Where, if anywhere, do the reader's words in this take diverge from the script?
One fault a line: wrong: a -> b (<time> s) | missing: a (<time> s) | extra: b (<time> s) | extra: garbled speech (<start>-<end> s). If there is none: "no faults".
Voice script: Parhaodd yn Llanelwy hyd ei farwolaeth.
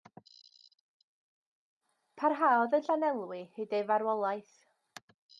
no faults